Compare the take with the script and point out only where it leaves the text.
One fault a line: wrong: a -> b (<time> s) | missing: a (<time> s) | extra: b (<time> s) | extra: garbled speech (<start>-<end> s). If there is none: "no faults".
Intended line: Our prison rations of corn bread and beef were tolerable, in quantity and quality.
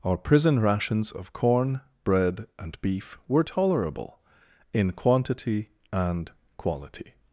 no faults